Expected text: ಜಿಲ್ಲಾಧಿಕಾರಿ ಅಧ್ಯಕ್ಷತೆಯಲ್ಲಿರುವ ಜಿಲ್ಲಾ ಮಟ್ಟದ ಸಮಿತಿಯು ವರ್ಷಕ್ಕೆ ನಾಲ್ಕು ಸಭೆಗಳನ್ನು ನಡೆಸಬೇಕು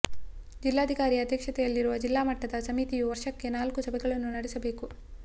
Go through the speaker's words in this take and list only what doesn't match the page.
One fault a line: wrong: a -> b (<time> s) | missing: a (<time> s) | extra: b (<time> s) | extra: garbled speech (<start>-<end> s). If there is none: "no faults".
no faults